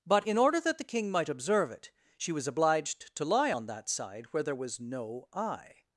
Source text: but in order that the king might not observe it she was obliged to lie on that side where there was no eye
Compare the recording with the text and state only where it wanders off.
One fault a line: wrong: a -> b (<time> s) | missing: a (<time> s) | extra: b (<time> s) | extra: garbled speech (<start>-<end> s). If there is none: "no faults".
missing: not (1.3 s)